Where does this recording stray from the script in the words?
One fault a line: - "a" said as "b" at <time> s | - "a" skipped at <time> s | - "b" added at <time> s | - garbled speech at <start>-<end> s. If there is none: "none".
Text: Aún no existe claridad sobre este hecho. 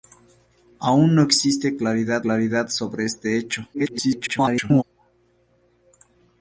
- "claridad" added at 2.2 s
- garbled speech at 3.7-4.8 s